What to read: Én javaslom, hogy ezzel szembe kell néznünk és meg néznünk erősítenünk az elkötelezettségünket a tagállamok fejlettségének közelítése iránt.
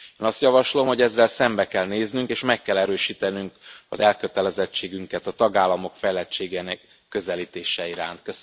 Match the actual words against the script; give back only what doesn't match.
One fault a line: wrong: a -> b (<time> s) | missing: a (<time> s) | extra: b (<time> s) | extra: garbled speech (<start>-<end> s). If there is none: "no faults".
extra: azt (0.3 s)
wrong: néznünk -> kell (2.6 s)